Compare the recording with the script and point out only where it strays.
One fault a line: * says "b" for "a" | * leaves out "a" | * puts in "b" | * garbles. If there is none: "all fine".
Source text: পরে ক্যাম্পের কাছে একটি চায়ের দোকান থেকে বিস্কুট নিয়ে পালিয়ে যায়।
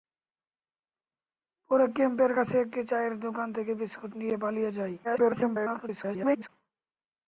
* garbles